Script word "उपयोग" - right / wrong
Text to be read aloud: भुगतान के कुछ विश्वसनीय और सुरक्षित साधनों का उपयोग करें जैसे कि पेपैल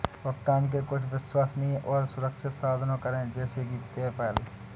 wrong